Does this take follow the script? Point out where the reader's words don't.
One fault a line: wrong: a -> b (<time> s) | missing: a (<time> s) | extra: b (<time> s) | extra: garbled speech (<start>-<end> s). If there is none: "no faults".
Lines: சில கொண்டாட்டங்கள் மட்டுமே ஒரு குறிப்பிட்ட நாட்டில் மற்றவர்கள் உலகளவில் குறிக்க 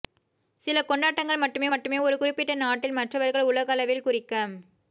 extra: மட்டுமே (1.7 s)